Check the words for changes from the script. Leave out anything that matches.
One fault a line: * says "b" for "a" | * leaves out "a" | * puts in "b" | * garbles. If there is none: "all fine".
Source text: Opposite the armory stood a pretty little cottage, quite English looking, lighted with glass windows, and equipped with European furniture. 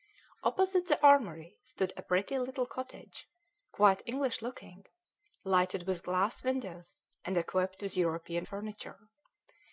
all fine